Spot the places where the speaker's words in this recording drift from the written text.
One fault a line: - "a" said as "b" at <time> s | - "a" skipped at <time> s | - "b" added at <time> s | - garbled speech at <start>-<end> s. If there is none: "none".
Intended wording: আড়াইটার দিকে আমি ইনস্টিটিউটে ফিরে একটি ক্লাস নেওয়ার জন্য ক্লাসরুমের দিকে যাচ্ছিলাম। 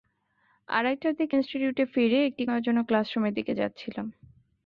- "আমি" skipped at 1.4 s
- "ক্লাস" skipped at 2.4 s